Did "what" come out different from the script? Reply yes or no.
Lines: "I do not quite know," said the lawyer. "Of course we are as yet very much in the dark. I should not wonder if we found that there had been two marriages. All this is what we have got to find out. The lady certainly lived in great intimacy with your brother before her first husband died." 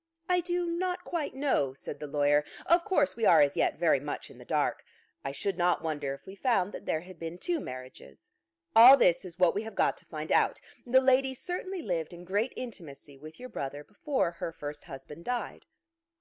no